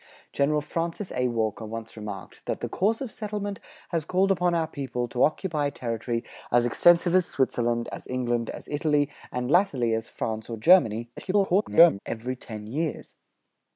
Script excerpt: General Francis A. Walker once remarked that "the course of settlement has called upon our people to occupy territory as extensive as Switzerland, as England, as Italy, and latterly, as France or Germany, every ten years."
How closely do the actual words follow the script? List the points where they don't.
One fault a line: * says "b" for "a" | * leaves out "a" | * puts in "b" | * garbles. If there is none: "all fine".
* garbles